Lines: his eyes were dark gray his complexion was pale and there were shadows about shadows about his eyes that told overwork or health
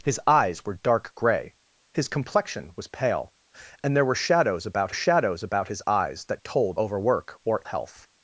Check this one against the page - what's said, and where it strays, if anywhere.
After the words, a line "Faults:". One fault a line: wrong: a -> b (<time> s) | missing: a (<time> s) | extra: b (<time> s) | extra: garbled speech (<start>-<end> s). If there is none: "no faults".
his eyes were dark gray his complexion was pale and there were shadows about shadows about his eyes that told overwork or health
Faults:
no faults